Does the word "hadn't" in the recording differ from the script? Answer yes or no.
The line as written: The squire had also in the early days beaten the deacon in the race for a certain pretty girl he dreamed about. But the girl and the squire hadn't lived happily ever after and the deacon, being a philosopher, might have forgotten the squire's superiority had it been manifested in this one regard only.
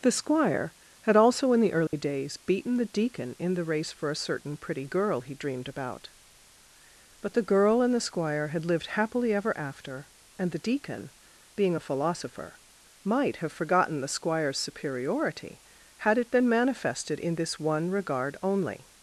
yes